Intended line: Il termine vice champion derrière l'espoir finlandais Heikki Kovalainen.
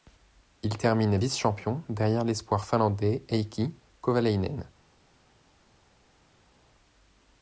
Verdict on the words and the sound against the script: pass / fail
pass